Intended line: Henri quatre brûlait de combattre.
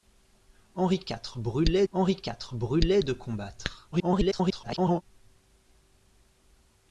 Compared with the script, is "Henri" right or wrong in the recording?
right